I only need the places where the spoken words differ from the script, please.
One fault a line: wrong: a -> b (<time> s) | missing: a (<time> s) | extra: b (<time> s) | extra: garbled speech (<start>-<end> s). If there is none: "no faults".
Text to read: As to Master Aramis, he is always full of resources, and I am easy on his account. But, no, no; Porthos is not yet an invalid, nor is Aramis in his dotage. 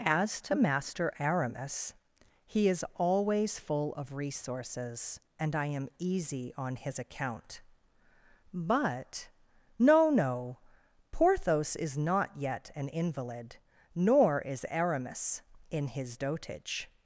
no faults